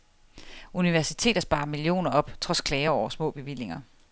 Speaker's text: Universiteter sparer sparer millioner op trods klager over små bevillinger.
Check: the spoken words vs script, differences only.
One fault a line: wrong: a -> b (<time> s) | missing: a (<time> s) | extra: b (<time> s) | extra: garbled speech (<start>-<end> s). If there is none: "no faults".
missing: sparer (1.6 s)